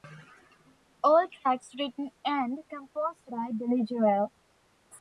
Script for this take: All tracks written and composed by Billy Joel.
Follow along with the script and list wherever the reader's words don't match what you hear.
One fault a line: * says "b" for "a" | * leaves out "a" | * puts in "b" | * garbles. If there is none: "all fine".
all fine